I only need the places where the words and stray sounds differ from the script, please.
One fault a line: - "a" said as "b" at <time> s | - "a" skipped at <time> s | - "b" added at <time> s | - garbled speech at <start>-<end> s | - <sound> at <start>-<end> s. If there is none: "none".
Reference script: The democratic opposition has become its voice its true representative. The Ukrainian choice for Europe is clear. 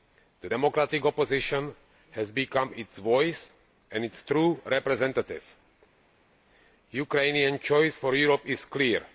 - "and" added at 3.9 s